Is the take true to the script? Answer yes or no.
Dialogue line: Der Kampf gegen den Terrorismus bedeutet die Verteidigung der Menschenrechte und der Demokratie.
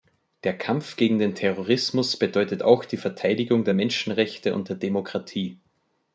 no